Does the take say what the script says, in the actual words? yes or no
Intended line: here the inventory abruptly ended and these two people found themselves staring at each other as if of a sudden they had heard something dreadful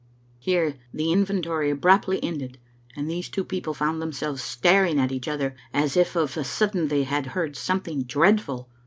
yes